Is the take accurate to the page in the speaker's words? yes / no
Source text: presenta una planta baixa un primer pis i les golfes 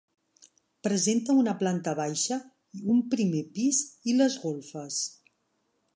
yes